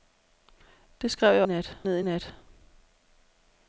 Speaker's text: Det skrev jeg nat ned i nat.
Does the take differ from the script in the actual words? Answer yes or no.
no